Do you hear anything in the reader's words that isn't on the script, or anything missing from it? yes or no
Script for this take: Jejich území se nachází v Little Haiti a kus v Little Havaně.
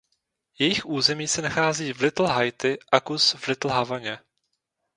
no